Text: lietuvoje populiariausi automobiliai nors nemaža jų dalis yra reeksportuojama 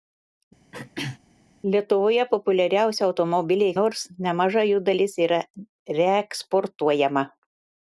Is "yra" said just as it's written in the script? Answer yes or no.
yes